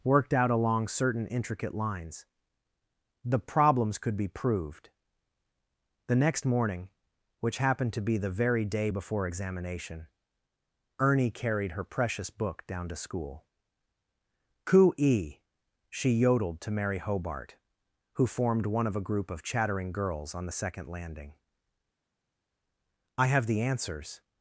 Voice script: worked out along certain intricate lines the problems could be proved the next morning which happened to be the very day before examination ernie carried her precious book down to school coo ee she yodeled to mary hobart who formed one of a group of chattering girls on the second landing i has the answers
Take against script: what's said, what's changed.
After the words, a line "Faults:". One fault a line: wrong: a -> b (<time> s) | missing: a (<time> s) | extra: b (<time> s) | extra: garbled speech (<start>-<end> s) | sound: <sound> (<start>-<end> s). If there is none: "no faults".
worked out along certain intricate lines the problems could be proved the next morning which happened to be the very day before examination ernie carried her precious book down to school coo ee she yodeled to mary hobart who formed one of a group of chattering girls on the second landing i have the answers
Faults:
wrong: has -> have (23.3 s)